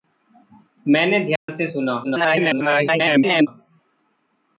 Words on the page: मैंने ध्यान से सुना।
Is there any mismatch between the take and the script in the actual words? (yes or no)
yes